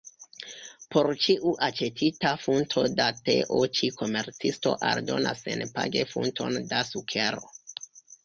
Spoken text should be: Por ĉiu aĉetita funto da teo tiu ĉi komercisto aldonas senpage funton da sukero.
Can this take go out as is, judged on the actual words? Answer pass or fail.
fail